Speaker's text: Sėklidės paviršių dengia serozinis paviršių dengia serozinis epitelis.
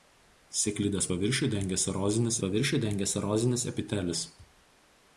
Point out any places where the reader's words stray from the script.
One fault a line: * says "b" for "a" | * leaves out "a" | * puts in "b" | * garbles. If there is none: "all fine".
all fine